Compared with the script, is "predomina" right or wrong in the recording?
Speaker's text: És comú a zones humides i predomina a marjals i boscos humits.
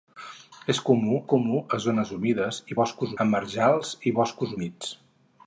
wrong